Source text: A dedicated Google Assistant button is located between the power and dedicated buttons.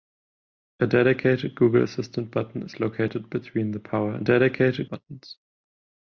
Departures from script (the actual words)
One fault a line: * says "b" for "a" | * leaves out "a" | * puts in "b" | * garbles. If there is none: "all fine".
all fine